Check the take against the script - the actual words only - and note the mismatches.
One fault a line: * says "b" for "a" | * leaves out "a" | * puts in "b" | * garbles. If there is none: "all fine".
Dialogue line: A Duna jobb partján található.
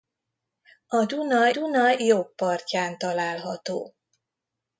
* puts in "Duna"